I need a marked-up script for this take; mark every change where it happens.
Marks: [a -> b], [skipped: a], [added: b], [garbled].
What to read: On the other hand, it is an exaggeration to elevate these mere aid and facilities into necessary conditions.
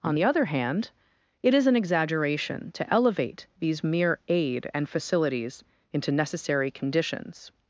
On the other hand, it is an exaggeration to elevate these mere aid and facilities into necessary conditions.